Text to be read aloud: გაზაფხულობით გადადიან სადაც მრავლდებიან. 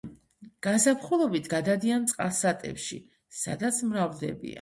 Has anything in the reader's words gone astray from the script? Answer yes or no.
yes